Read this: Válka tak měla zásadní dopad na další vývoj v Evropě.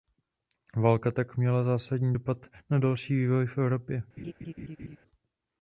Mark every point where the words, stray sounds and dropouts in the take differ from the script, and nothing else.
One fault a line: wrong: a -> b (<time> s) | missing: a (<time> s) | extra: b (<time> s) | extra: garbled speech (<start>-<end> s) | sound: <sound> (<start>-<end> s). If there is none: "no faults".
sound: laugh (4.2-5.0 s)